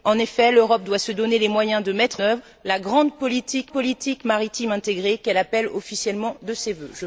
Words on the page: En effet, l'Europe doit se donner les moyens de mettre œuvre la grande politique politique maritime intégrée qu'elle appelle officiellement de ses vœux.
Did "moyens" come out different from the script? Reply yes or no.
no